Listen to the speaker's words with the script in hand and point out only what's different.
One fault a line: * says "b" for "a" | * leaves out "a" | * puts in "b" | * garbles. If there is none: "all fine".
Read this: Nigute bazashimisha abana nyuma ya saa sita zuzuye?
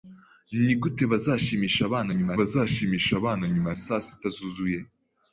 * puts in "bazashimisha abana nyuma"